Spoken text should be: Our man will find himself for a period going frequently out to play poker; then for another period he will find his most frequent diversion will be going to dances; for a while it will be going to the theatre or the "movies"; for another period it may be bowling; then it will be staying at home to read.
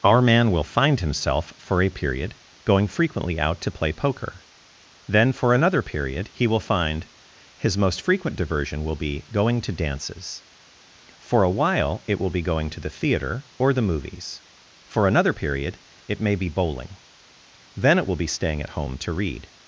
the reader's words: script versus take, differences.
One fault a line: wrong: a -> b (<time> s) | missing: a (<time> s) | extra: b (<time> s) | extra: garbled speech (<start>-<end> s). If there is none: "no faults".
no faults